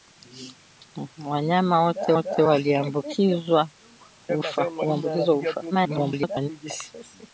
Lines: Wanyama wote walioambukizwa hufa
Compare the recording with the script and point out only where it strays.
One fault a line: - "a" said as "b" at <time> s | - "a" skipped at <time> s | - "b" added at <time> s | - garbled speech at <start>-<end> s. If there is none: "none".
- "wote" added at 2.1 s
- garbled speech at 5.7-6.5 s